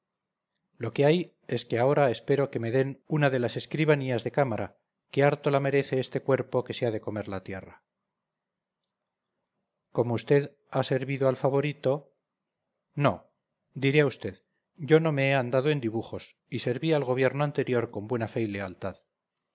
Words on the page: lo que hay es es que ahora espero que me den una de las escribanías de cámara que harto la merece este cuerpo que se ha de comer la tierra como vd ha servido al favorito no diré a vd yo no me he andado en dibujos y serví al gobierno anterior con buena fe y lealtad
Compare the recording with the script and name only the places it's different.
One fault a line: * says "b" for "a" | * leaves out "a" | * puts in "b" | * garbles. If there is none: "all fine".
* leaves out "es"